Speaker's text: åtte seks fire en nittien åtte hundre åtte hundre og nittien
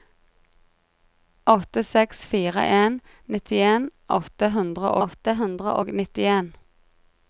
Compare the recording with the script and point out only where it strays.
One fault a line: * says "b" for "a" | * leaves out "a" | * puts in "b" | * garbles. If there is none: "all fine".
all fine